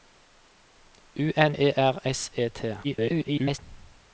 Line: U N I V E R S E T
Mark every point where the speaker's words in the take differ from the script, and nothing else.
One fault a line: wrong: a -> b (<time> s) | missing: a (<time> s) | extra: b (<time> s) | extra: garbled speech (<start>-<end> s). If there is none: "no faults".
missing: I V (1.6 s)
extra: garbled speech (2.8-3.6 s)